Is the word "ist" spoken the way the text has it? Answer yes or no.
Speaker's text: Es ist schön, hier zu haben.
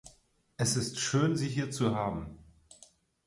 yes